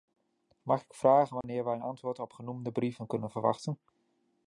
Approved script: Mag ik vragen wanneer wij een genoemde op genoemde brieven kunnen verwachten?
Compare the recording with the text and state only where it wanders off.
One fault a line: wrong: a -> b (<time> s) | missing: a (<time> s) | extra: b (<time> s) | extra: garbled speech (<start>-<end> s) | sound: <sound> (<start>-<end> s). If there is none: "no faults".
sound: dropout (1.4-1.4 s)
wrong: genoemde -> antwoord (1.8 s)